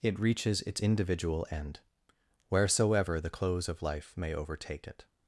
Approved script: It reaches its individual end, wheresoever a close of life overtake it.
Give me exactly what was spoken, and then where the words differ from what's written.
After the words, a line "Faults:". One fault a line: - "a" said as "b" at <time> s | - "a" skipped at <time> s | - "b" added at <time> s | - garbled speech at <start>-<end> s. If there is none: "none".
It reaches its individual end, wheresoever the close of life may overtake it.
Faults:
- "a" said as "the" at 3.2 s
- "may" added at 4.2 s